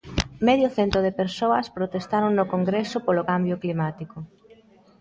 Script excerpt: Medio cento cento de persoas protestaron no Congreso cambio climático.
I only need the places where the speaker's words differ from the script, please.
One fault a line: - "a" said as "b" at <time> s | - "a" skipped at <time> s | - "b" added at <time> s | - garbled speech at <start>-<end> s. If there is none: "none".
- "cento" skipped at 1.0 s
- "polo" added at 3.0 s